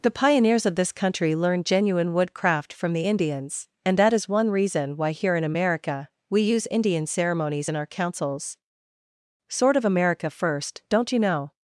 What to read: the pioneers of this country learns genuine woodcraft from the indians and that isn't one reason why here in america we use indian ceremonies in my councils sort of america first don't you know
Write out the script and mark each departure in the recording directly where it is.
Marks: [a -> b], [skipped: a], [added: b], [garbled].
the pioneers of this country [learns -> learned] genuine woodcraft from the indians and that [isn't -> is] one reason why here in america we use indian ceremonies in [my -> our] councils sort of america first don't you know